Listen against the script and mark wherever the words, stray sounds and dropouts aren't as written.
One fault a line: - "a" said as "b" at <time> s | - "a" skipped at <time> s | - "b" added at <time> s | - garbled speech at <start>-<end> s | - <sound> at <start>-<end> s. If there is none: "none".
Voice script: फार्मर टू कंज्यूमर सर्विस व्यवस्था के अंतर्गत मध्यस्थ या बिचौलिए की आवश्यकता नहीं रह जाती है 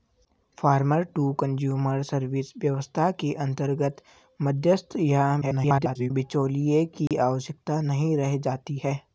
- garbled speech at 5.4-6.1 s
- dropout at 7.1-7.1 s